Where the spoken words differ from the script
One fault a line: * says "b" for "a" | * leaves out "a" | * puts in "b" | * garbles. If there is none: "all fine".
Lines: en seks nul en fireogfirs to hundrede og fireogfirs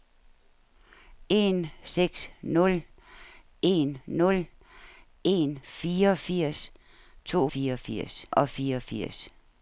* puts in "nul en"
* says "fireogfirs" for "hundrede"